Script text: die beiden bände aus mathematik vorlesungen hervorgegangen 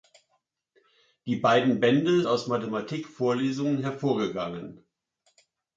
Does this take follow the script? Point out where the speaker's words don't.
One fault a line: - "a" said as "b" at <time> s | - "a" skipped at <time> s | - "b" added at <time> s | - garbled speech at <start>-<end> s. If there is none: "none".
none